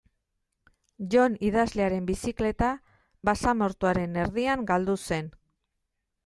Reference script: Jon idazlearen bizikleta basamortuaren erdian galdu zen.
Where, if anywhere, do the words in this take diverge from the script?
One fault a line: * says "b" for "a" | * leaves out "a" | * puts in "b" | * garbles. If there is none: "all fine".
all fine